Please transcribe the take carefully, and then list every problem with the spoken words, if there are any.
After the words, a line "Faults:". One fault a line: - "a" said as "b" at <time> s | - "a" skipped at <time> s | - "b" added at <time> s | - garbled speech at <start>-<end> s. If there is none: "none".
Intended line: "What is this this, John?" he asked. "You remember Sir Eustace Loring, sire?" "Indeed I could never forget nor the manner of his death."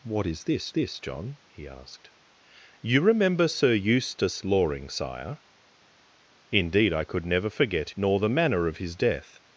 "What is this this, John?" he asked. "You remember Sir Eustace Loring, sire?" "Indeed I could never forget nor the manner of his death."
Faults:
none